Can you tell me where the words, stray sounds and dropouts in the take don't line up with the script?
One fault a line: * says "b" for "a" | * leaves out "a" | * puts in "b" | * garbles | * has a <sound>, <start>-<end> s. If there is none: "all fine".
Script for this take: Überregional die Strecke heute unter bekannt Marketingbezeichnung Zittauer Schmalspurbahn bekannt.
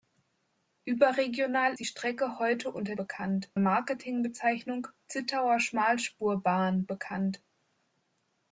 all fine